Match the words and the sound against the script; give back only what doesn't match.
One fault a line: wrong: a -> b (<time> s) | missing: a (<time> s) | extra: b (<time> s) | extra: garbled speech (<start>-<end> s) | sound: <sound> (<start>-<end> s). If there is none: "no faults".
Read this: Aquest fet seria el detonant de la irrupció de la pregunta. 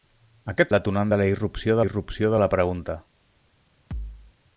missing: fet seria (0.7 s)
extra: irrupció (1.8 s)
sound: thud (3.9-4.3 s)